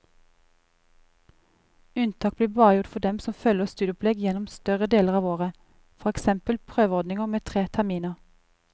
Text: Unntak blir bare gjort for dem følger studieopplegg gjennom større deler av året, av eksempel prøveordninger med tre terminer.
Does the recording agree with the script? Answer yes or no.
no